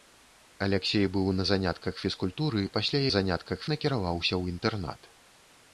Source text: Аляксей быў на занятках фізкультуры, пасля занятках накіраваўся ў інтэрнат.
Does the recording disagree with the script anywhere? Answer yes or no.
no